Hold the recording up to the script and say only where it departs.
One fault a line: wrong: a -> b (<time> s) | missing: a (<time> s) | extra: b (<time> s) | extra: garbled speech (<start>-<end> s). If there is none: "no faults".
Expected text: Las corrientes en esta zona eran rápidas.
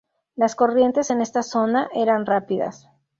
no faults